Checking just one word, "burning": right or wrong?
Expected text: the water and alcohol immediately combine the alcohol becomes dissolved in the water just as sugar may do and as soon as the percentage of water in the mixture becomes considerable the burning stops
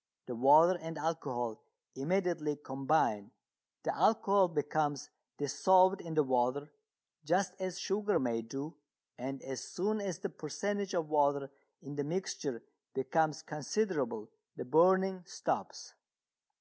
right